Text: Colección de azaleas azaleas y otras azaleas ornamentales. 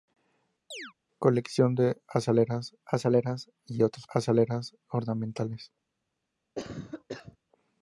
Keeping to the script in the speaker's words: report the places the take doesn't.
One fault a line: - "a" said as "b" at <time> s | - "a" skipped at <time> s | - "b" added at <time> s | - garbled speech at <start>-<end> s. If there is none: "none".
none